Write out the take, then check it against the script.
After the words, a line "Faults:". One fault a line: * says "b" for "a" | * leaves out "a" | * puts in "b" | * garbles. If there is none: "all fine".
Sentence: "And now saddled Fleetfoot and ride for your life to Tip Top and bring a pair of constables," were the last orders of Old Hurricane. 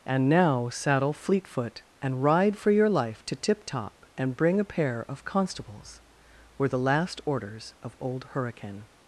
"And now saddle Fleetfoot and ride for your life to Tip Top and bring a pair of constables," were the last orders of Old Hurricane.
Faults:
* says "saddle" for "saddled"